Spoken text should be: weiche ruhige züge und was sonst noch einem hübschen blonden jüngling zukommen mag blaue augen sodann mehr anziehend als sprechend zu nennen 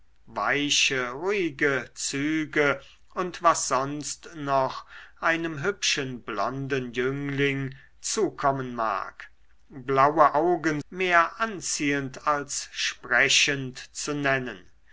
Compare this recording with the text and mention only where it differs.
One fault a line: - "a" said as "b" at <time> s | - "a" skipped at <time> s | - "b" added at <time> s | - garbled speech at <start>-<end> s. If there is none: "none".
- "sodann" skipped at 10.8 s